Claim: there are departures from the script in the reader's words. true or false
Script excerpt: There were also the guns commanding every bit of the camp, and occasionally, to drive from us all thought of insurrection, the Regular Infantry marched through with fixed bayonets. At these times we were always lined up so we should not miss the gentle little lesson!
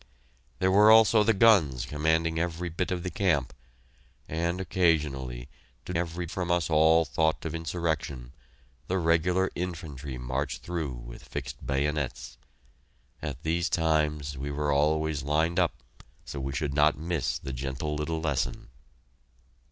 true